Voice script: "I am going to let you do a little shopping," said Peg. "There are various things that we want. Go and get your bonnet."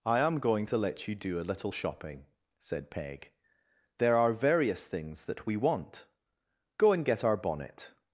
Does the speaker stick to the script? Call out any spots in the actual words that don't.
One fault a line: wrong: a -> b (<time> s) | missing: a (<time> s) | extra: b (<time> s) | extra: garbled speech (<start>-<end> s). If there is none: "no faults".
wrong: your -> our (7.2 s)